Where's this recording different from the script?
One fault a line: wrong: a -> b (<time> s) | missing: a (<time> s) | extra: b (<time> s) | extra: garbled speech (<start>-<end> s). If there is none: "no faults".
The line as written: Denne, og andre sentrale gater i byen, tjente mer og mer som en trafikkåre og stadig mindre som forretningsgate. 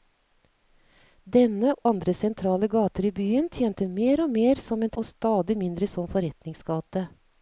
missing: og (1.7 s)
missing: trafikkåre (4.9 s)